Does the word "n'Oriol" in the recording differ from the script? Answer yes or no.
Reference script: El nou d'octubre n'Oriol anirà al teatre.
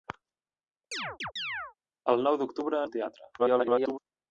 yes